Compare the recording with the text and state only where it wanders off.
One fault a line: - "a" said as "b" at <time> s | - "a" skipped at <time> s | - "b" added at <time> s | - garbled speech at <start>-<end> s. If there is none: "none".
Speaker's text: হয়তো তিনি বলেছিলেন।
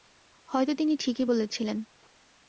- "ঠিকই" added at 1.0 s